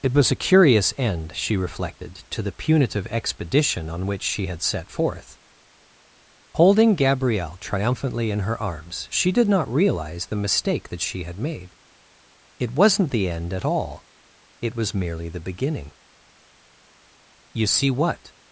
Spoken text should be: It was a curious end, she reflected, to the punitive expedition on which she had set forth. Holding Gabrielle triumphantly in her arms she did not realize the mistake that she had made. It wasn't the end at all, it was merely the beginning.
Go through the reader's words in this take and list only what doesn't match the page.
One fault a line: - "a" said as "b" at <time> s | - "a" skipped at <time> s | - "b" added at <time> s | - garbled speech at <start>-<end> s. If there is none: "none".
- "You see what" added at 17.5 s